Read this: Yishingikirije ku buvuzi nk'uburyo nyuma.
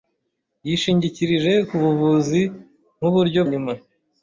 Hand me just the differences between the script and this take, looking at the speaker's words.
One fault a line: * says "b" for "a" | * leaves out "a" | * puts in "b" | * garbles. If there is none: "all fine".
all fine